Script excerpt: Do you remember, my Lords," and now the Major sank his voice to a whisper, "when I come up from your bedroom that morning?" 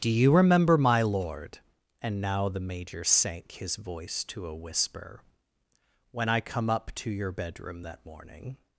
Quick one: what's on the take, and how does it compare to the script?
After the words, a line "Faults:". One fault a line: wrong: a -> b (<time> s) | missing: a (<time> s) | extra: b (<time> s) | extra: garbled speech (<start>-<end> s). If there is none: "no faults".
Do you remember, my Lord," and now the Major sank his voice to a whisper, "when I come up to your bedroom that morning?"
Faults:
wrong: Lords -> Lord (1.0 s)
wrong: from -> to (7.0 s)